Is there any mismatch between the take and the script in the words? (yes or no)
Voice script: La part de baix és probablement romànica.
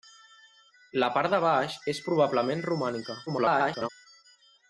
yes